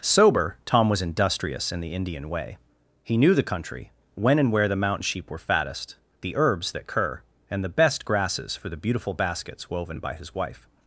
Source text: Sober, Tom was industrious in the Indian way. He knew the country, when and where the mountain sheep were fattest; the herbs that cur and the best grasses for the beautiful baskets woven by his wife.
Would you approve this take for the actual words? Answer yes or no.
yes